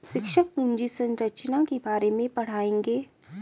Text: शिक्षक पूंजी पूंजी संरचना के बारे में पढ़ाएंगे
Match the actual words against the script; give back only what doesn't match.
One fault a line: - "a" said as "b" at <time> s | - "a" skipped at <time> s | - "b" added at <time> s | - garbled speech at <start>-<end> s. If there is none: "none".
- "पूंजी" skipped at 0.9 s